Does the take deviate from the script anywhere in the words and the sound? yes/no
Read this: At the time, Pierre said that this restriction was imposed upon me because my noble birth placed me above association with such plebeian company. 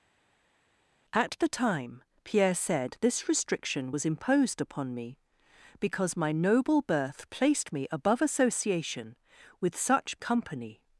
yes